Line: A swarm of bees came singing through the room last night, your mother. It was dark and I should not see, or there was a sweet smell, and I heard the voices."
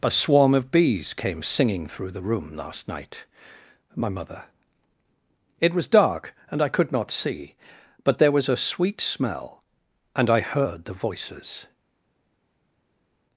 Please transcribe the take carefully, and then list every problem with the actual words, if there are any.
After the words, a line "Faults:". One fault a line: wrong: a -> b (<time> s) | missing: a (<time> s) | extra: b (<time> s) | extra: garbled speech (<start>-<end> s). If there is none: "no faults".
A swarm of bees came singing through the room last night, my mother. It was dark and I could not see, but there was a sweet smell, and I heard the voices."
Faults:
wrong: your -> my (4.0 s)
wrong: should -> could (6.7 s)
wrong: or -> but (8.0 s)